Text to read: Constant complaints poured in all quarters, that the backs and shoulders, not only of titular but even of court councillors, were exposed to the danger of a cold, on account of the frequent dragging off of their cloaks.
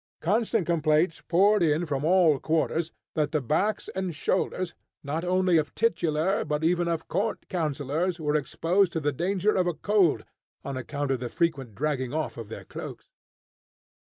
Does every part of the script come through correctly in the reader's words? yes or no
no